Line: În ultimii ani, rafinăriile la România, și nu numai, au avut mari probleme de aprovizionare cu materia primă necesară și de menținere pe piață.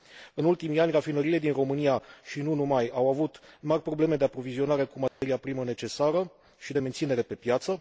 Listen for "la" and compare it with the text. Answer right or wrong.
wrong